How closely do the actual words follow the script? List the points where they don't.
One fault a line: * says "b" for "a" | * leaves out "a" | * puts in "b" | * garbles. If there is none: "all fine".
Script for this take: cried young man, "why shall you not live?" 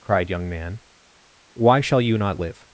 all fine